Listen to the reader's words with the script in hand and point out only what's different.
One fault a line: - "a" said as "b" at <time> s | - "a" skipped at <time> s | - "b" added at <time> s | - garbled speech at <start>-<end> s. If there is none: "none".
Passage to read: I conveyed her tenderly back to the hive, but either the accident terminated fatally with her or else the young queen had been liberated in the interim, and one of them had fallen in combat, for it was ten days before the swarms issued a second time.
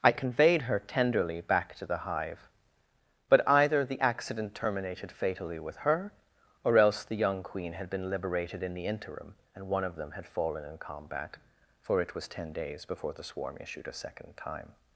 - "swarms" said as "swarm" at 13.2 s